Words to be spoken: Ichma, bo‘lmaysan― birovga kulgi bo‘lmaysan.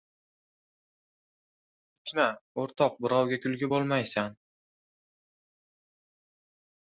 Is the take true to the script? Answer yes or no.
no